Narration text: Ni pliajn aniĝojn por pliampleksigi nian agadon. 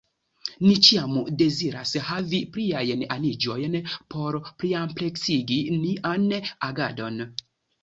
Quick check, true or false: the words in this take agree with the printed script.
false